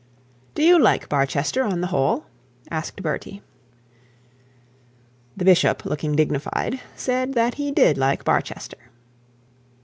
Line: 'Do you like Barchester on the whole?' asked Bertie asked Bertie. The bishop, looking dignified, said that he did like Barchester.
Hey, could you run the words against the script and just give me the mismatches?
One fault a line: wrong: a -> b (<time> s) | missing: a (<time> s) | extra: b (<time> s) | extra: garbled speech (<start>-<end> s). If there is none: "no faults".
missing: asked Bertie (3.4 s)